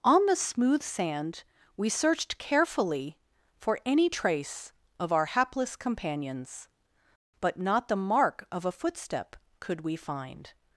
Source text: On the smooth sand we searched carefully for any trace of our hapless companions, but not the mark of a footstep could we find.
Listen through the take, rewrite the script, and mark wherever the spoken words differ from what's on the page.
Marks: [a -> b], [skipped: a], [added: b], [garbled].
On the smooth sand we searched carefully for any trace of our hapless companions, but not the mark of a footstep could we find.